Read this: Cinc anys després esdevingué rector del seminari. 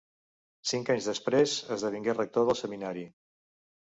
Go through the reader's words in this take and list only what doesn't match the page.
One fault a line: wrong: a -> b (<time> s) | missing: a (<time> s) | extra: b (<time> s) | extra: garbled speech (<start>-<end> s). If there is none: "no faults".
no faults